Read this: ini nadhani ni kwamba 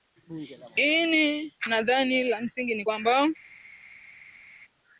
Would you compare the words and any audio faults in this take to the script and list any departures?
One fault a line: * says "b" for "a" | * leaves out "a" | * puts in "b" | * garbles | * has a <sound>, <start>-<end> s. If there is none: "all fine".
* puts in "la msingi"